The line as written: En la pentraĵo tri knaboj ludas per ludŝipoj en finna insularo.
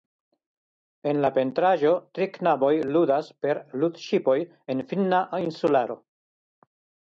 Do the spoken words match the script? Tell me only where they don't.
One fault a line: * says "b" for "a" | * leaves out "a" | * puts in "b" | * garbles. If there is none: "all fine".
all fine